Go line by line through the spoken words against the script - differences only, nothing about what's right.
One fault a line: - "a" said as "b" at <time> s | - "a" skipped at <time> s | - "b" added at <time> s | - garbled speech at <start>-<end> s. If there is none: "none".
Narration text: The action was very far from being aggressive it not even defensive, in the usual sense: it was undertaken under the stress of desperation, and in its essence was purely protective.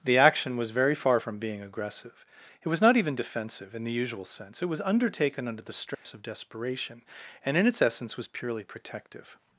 - "was" added at 2.7 s